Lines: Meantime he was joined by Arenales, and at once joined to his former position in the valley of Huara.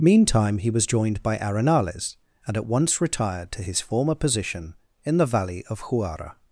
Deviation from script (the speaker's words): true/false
true